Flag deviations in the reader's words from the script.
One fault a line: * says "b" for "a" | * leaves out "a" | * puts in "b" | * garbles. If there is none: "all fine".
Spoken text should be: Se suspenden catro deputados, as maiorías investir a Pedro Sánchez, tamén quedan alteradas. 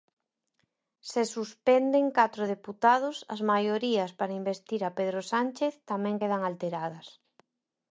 * puts in "para"